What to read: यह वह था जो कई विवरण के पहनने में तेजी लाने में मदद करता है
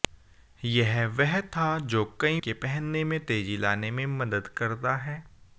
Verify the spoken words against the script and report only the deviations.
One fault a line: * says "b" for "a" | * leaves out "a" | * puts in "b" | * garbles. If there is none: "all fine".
* leaves out "विवरण"